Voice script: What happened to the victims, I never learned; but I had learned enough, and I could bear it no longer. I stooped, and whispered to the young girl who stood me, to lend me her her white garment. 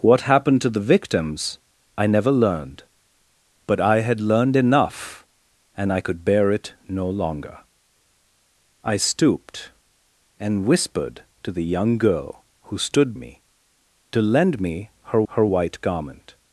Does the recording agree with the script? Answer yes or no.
yes